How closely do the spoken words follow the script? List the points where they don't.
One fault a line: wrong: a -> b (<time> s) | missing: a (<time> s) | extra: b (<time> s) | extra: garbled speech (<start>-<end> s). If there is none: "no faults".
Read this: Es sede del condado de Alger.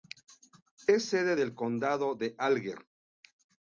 no faults